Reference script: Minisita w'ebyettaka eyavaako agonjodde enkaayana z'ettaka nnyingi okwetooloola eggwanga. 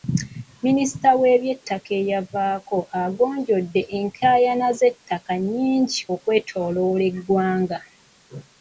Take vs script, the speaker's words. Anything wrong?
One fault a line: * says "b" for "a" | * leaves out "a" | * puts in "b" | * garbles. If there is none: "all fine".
all fine